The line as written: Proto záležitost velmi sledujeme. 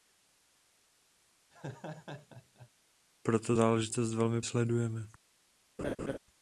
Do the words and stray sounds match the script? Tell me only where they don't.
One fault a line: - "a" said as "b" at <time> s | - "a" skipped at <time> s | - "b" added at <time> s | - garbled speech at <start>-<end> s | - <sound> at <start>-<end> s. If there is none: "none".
- laugh at 1.5-2.7 s
- laugh at 5.8-6.2 s